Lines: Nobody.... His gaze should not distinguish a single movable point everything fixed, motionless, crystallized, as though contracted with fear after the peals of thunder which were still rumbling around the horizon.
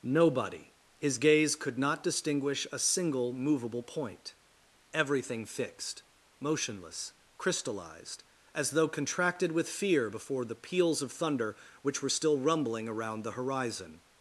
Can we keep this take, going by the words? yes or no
no